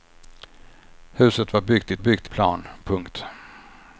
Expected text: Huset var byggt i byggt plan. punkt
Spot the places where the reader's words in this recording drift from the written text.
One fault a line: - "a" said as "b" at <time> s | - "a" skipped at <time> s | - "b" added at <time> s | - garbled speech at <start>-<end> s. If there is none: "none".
none